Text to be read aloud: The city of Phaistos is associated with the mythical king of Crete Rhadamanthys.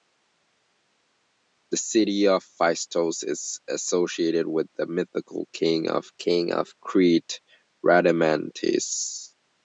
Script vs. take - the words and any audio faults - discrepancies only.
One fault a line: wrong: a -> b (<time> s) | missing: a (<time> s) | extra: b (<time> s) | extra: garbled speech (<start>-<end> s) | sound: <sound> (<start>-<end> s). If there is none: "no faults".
extra: king of (6.2 s)